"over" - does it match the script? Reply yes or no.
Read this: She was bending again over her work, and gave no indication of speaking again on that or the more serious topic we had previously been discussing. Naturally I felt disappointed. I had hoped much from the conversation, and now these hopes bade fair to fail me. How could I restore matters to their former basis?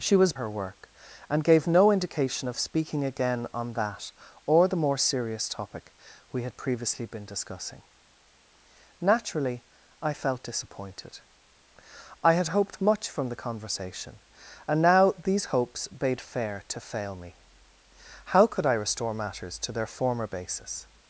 no